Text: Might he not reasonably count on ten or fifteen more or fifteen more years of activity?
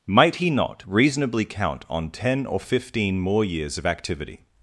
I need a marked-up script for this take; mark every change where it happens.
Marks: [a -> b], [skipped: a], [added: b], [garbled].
Might he not reasonably count on ten or fifteen more [skipped: or fifteen more] years of activity?